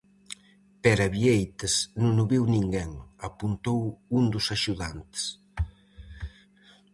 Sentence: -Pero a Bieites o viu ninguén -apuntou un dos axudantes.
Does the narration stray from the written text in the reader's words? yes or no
yes